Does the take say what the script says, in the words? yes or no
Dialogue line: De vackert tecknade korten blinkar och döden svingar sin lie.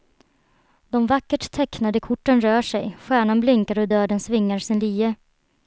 no